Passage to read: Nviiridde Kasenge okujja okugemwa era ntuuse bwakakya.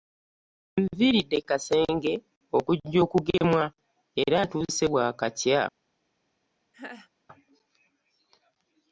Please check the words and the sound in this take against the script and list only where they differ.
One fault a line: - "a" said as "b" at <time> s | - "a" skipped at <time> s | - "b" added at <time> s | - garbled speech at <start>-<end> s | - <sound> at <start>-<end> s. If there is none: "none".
- dropout at 3.4-3.4 s
- laugh at 6.7-7.1 s